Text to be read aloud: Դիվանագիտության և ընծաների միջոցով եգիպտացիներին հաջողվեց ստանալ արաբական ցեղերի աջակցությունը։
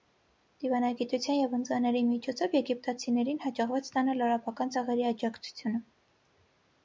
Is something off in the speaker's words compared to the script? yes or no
no